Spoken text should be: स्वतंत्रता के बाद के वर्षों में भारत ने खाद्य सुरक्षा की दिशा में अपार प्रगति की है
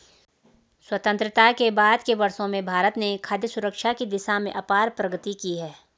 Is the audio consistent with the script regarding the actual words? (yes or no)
yes